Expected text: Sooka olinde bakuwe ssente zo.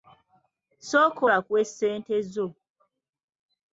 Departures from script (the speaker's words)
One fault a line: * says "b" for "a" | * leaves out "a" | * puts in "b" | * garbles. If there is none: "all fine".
* leaves out "olinde"